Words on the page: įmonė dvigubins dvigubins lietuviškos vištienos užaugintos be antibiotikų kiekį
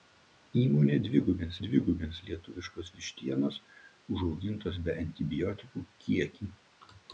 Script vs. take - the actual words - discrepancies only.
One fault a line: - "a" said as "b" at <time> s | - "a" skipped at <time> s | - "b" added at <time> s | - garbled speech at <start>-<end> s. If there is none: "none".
none